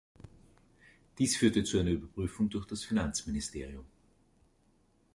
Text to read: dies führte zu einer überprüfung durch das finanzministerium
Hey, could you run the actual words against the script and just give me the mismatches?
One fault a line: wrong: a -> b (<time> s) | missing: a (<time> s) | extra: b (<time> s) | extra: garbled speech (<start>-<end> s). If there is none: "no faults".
no faults